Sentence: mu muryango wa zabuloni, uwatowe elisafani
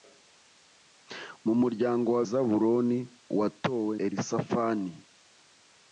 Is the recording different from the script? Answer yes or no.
no